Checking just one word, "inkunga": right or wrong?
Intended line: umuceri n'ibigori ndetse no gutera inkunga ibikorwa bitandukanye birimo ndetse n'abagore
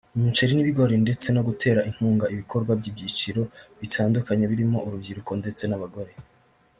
right